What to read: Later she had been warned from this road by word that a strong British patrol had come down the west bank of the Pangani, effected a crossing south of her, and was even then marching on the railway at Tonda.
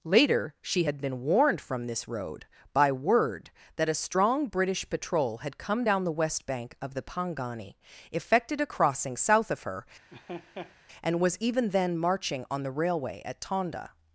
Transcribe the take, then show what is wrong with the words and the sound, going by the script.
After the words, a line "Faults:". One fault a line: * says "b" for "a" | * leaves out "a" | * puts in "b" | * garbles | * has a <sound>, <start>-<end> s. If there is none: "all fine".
Later she had been warned from this road by word that a strong British patrol had come down the west bank of the Pangani, effected a crossing south of her, and was even then marching on the railway at Tonda.
Faults:
* has a laugh, 10.1-10.8 s